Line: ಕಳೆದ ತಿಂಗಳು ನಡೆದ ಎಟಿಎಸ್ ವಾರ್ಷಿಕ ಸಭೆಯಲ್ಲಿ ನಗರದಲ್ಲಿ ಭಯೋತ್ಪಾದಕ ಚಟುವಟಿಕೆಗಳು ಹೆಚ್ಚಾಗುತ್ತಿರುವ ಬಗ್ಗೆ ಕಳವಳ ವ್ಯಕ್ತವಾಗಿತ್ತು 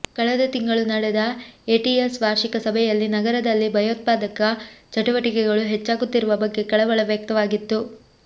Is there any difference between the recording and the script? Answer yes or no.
no